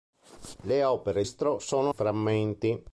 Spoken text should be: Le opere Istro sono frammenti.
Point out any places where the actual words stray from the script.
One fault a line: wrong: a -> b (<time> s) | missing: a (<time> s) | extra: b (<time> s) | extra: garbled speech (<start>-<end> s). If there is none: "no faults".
no faults